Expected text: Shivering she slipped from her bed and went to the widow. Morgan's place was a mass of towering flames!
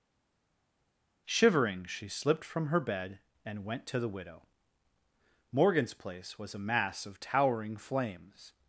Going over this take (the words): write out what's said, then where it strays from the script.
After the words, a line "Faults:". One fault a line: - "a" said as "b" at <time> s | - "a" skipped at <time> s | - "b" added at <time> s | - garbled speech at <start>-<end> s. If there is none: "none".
Shivering she slipped from her bed and went to the widow. Morgan's place was a mass of towering flames!
Faults:
none